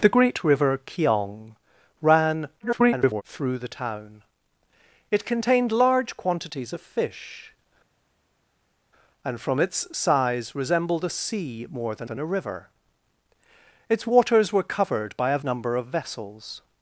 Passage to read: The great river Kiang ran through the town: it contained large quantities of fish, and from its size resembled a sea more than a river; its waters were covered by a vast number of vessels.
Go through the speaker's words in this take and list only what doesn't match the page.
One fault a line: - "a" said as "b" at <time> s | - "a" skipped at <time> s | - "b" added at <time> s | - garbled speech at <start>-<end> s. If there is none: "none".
- garbled speech at 2.6-3.2 s
- "than" added at 12.0 s
- "vast" skipped at 15.4 s